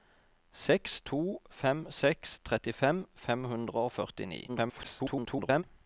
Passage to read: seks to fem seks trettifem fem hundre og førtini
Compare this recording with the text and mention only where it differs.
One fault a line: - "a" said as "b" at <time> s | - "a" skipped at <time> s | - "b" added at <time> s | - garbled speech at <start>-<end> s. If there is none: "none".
- garbled speech at 4.5-5.6 s